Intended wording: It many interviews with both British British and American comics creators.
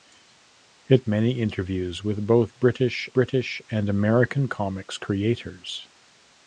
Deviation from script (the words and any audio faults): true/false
false